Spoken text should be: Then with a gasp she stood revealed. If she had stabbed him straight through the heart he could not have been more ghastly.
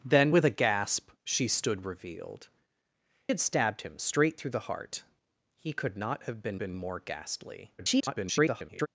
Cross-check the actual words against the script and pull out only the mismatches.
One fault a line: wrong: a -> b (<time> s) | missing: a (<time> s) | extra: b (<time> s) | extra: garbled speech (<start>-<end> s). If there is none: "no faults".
missing: If she (2.5 s)
extra: been (6.6 s)
extra: garbled speech (7.8-8.9 s)